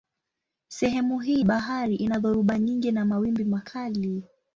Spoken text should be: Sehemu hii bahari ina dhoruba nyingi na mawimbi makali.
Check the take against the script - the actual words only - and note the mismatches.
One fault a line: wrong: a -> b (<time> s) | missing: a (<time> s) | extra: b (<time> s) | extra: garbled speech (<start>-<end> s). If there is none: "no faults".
no faults